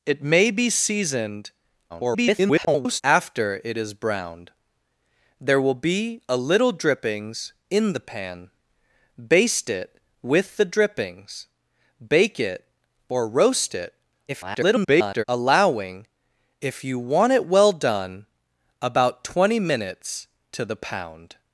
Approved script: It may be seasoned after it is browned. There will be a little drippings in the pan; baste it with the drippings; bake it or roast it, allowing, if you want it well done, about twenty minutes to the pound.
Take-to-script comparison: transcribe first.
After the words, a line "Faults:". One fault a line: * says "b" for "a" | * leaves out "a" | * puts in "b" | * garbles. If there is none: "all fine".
It may be seasoned [garbled] after it is browned. There will be a little drippings in the pan; baste it with the drippings; bake it or roast it, [garbled] allowing, if you want it well done, about twenty minutes to the pound.
Faults:
* garbles
* garbles